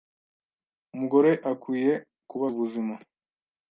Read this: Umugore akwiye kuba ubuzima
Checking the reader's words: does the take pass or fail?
pass